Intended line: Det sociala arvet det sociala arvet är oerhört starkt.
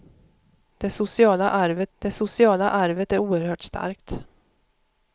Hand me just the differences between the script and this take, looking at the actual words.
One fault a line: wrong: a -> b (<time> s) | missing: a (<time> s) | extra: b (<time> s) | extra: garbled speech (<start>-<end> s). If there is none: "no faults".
no faults